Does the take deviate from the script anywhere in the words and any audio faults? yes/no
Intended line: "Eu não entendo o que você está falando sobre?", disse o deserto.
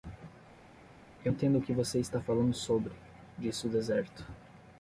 yes